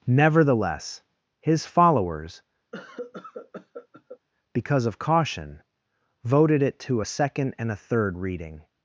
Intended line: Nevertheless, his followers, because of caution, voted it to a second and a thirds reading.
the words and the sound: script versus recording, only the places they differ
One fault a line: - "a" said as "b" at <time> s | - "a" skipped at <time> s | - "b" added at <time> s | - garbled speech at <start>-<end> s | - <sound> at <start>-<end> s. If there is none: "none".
- cough at 2.7-4.2 s
- "thirds" said as "third" at 7.8 s